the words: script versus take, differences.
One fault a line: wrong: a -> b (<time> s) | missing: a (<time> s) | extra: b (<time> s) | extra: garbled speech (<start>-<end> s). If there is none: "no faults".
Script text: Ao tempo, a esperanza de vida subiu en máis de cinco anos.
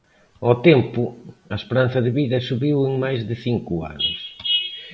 no faults